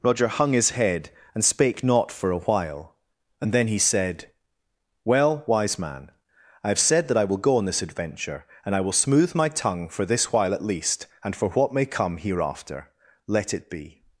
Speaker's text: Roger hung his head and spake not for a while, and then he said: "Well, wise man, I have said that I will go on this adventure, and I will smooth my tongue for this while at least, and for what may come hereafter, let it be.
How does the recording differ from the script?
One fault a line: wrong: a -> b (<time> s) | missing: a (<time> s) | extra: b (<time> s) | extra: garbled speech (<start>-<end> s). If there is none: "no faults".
no faults